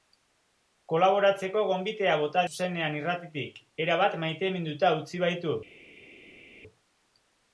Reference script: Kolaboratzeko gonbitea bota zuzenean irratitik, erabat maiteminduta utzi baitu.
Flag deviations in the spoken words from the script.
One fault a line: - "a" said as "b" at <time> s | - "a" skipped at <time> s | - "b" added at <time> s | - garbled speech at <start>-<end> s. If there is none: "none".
none